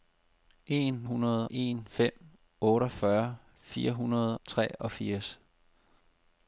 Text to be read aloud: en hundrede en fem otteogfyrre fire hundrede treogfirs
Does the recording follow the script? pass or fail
pass